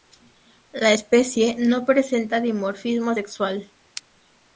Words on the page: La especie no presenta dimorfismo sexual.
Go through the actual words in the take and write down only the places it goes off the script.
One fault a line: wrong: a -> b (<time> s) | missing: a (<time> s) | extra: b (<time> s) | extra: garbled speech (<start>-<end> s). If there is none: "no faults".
no faults